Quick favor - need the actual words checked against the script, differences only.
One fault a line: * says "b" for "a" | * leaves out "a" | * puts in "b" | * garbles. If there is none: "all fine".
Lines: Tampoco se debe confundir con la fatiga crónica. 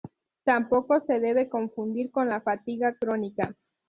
all fine